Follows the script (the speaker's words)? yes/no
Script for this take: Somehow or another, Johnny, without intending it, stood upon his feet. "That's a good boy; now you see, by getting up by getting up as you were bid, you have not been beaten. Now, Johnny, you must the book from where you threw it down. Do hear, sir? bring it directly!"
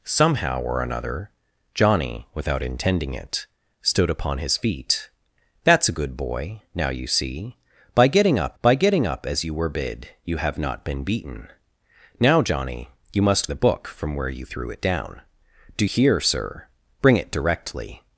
yes